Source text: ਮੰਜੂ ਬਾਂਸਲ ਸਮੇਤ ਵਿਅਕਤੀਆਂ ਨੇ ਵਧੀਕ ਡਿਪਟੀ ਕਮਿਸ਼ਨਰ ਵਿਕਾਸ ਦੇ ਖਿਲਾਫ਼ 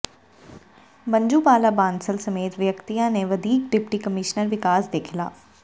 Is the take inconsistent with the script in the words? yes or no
yes